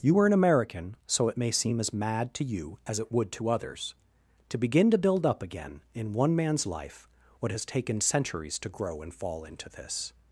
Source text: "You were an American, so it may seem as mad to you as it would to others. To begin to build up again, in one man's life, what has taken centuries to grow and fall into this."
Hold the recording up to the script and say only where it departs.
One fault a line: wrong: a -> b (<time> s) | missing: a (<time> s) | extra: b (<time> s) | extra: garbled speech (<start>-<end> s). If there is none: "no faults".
no faults